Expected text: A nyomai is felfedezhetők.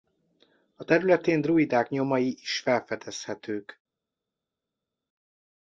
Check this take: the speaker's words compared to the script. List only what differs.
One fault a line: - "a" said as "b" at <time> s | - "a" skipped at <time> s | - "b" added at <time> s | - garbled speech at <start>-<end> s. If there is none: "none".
- "területén druidák" added at 0.8 s